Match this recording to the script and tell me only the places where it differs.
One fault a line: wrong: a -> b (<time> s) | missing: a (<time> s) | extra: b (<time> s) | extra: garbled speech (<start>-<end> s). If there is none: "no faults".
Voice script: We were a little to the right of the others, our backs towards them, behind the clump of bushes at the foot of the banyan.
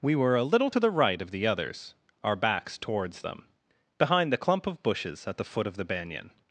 no faults